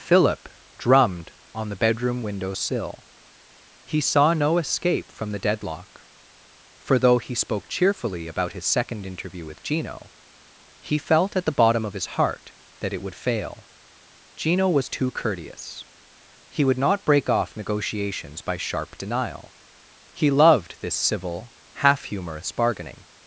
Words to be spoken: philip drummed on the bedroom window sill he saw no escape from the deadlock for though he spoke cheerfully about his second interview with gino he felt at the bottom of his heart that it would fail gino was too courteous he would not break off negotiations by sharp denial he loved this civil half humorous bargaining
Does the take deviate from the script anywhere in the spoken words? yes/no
no